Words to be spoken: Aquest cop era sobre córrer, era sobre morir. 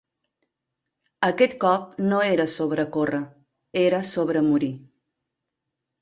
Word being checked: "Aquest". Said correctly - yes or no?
yes